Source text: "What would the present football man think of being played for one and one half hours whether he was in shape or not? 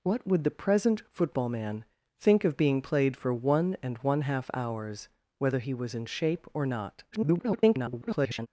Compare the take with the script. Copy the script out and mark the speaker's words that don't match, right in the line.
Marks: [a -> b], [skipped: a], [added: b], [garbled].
"What would the present football man think of being played for one and one half hours whether he was in shape or not? [garbled]